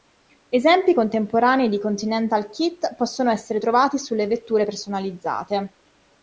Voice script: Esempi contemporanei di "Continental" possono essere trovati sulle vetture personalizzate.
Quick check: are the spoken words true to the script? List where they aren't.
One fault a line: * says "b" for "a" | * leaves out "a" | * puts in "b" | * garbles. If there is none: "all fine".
* puts in "kit"